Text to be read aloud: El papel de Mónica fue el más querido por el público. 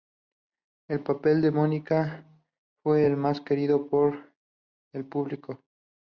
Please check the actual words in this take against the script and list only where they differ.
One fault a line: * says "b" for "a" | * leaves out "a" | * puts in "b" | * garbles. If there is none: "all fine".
all fine